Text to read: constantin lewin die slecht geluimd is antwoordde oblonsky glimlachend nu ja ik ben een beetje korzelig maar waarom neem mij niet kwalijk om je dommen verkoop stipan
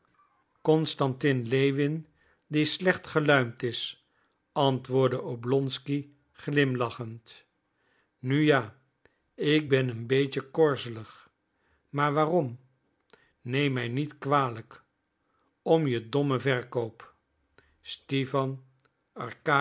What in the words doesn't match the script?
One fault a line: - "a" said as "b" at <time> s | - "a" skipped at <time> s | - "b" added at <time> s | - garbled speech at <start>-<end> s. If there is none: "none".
none